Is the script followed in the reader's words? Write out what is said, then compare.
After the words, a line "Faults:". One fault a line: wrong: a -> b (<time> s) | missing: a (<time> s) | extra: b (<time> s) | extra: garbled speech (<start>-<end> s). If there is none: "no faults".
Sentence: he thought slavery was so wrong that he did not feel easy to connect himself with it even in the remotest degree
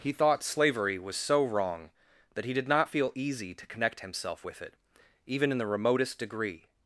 he thought slavery was so wrong that he did not feel easy to connect himself with it even in the remotest degree
Faults:
no faults